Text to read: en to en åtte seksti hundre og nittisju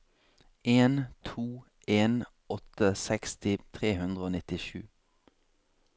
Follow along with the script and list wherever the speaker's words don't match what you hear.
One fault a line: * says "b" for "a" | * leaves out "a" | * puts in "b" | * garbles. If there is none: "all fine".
* puts in "tre"